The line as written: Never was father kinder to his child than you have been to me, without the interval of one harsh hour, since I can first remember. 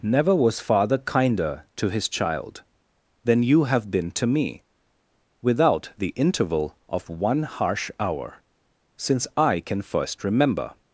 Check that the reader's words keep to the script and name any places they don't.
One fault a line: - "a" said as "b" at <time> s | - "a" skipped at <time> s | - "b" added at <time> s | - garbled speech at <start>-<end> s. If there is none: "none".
none